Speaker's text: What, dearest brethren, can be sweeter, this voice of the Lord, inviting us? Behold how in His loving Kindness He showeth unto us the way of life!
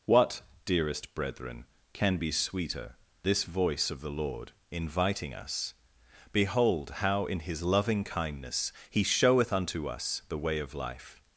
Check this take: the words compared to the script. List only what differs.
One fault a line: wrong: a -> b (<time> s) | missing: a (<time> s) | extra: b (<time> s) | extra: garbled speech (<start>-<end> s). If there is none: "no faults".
no faults